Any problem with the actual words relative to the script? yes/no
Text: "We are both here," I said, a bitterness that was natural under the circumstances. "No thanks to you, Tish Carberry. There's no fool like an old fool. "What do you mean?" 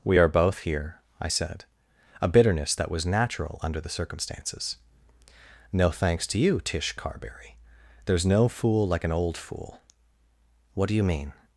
no